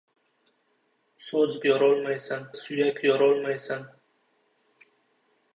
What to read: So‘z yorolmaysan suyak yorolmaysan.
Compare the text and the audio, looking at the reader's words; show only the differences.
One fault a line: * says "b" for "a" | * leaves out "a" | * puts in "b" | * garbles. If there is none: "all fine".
all fine